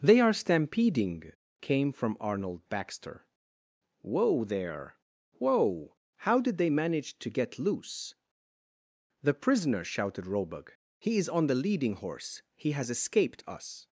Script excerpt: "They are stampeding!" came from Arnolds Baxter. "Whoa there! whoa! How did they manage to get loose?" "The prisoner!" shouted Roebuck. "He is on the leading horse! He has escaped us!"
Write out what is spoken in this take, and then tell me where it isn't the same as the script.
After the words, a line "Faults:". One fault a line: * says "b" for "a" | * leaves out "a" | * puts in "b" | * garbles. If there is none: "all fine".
"They are stampeding!" came from Arnold Baxter. "Whoa there! whoa! How did they manage to get loose?" "The prisoner!" shouted Roebuck. "He is on the leading horse! He has escaped us!"
Faults:
* says "Arnold" for "Arnolds"